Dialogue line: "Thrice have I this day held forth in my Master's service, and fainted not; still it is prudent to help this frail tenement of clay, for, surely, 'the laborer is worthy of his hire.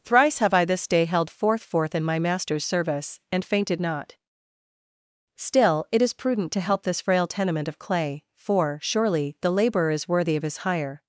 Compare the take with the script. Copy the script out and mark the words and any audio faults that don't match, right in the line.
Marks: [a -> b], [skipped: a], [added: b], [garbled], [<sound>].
"Thrice have I this day held forth [added: forth] in my Master's service, and fainted not; still it is prudent to help this frail tenement of clay, for, surely, 'the laborer is worthy of his hire.